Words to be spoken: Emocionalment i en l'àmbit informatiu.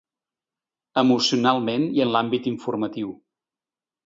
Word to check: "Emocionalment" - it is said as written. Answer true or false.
true